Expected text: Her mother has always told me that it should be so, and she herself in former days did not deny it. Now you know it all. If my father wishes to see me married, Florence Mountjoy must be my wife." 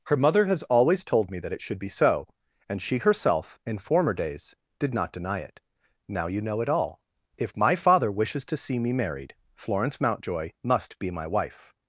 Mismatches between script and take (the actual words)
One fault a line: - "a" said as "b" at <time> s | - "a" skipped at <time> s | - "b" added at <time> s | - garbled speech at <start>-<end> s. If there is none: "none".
none